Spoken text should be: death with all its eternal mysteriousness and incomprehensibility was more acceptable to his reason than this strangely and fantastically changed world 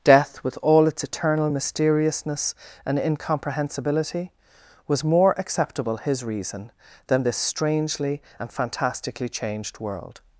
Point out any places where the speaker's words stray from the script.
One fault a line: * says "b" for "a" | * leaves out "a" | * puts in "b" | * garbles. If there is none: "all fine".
* leaves out "to"